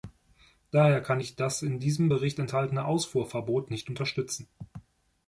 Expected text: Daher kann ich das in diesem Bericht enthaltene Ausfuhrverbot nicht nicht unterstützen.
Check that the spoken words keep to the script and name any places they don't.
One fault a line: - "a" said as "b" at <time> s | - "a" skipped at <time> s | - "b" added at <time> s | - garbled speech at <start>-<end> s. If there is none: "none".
- "nicht" skipped at 3.9 s